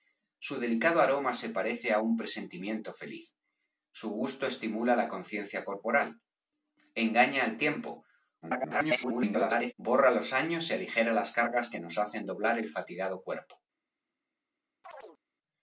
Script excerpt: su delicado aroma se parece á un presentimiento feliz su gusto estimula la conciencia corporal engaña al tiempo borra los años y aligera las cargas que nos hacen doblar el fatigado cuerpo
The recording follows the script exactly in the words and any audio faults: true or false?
false